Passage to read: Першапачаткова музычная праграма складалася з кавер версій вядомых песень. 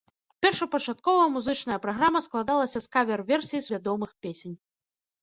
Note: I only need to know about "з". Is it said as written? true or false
true